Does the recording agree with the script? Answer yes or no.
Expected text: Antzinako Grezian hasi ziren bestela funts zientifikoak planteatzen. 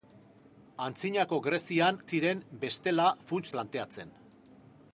no